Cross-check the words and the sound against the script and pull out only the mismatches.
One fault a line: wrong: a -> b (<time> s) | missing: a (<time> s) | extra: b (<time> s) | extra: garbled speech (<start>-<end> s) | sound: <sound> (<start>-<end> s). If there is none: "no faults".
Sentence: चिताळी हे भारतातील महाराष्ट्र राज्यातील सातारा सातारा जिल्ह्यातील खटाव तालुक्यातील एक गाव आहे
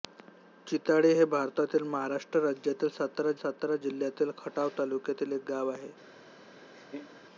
sound: laugh (6.7-7.2 s)